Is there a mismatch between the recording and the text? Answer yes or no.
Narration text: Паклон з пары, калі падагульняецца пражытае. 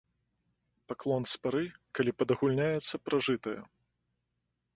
no